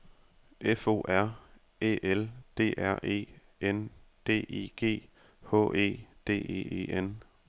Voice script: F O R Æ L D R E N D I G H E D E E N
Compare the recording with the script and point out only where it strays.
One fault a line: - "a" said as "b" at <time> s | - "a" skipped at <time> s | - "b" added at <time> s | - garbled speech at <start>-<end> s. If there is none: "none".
none